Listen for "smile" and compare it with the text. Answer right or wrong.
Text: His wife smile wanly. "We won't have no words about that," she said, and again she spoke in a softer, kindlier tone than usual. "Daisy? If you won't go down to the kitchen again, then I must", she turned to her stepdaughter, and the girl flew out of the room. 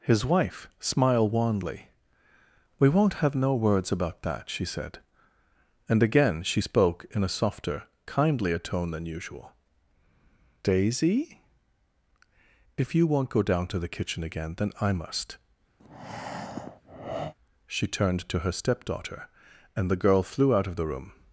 wrong